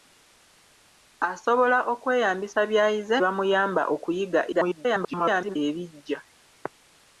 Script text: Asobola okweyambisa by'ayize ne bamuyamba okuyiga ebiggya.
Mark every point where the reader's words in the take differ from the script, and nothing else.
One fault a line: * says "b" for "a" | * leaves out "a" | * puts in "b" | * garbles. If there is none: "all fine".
* leaves out "ne"
* garbles